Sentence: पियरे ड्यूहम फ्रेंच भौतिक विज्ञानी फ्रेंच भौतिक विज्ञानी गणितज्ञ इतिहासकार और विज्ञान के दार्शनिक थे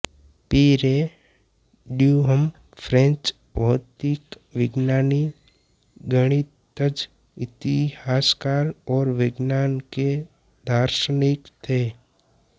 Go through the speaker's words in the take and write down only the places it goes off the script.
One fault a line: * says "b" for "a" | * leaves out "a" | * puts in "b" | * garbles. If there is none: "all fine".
* leaves out "फ्रेंच भौतिक विज्ञानी"